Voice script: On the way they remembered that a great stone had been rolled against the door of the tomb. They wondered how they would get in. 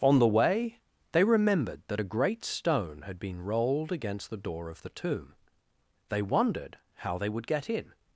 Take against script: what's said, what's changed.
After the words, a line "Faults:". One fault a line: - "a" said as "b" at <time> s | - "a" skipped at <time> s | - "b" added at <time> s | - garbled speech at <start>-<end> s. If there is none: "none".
On the way they remembered that a great stone had been rolled against the door of the tomb. They wondered how they would get in.
Faults:
none